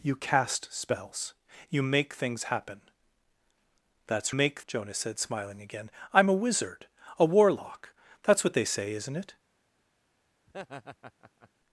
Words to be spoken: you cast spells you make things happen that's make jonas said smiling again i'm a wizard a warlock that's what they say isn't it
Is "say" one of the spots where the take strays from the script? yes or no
no